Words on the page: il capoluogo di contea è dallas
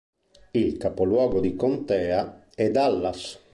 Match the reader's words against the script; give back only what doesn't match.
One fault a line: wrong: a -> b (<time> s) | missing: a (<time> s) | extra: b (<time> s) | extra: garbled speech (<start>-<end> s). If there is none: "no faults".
no faults